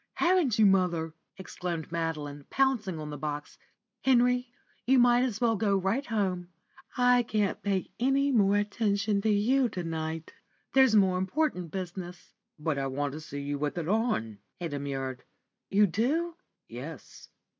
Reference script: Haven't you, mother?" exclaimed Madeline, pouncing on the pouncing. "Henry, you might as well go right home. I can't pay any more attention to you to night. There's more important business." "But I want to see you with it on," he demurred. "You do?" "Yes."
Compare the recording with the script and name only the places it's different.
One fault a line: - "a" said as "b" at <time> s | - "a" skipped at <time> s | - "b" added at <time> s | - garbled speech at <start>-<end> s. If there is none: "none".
- "pouncing" said as "box" at 3.2 s